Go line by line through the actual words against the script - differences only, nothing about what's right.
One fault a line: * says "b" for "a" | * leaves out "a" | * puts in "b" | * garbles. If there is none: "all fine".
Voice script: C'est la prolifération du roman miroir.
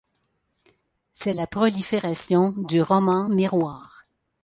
all fine